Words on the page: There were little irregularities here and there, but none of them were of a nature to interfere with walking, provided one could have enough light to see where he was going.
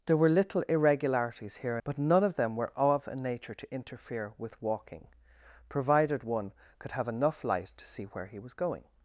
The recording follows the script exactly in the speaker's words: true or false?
false